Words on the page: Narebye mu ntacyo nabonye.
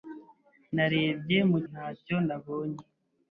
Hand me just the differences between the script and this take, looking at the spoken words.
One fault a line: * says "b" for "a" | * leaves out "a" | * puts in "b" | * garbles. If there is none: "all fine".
all fine